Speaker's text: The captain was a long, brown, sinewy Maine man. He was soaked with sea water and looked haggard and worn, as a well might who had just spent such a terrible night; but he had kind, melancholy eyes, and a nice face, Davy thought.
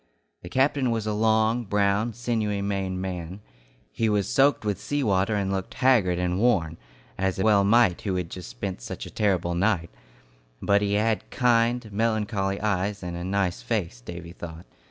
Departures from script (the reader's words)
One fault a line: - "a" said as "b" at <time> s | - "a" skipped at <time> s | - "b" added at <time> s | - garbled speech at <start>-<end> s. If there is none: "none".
none